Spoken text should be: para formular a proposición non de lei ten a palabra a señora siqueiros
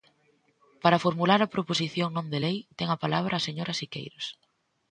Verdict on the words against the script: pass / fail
pass